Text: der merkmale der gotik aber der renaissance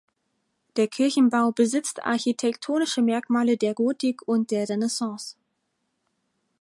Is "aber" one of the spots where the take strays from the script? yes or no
yes